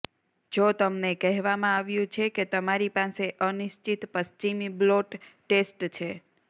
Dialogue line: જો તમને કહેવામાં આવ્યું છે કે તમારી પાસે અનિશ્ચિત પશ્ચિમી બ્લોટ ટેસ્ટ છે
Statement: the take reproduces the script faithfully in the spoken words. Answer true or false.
true